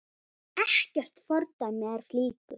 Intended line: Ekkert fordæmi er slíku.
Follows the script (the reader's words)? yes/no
yes